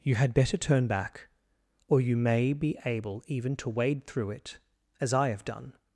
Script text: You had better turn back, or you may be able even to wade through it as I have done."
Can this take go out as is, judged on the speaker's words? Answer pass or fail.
pass